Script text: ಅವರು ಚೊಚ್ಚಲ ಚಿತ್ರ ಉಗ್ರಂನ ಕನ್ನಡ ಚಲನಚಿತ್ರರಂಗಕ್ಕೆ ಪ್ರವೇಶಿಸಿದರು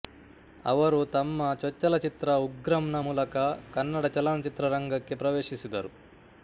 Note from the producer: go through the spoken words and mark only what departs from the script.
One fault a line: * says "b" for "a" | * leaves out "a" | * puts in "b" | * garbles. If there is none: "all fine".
* puts in "ತಮ್ಮ"
* puts in "ಮೂಲಕ"